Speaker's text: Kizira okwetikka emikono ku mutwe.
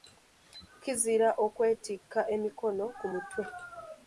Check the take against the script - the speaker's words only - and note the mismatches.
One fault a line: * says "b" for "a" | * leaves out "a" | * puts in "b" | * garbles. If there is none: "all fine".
all fine